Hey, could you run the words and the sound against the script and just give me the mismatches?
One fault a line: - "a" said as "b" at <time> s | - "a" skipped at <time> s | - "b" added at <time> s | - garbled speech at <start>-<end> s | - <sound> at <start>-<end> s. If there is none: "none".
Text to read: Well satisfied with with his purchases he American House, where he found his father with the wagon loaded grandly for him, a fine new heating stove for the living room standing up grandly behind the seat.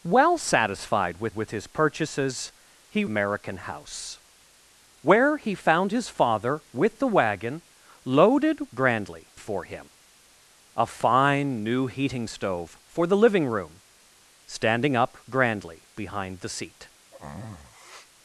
- sneeze at 17.1-18.1 s